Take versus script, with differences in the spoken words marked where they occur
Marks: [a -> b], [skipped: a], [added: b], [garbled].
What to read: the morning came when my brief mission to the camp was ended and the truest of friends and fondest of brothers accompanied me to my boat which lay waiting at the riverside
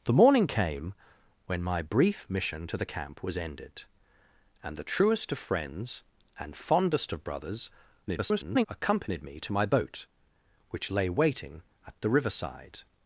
the morning came when my brief mission to the camp was ended and the truest of friends and fondest of brothers [garbled] accompanied me to my boat which lay waiting at the riverside